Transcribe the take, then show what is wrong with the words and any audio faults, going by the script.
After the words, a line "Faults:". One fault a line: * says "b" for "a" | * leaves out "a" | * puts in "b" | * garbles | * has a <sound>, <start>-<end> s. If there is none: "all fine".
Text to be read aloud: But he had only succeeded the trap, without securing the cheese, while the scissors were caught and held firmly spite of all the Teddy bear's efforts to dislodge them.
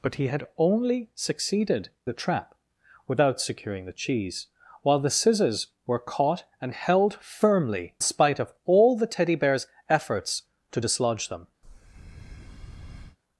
But he had only succeeded the trap, without securing the cheese, while the scissors were caught and held firmly spite of all the Teddy bear's efforts to dislodge them.
Faults:
* has a breath, 11.6-13.2 s